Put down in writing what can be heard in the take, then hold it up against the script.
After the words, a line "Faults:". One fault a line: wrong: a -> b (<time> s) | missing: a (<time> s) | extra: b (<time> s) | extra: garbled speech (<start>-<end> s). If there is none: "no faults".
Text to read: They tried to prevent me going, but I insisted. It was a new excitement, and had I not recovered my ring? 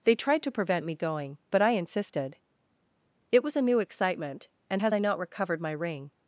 They tried to prevent me going, but I insisted. It was a new excitement, and has I not recovered my ring?
Faults:
wrong: had -> has (4.8 s)